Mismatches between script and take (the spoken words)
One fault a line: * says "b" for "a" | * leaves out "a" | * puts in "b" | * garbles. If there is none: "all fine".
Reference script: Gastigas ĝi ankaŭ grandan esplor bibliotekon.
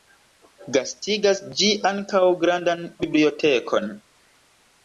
* leaves out "esplor"